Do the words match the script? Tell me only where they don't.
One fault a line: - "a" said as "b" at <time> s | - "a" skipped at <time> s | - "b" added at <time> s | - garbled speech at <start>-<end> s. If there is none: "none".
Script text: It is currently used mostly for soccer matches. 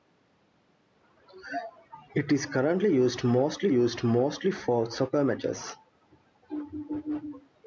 - "used mostly" added at 3.7 s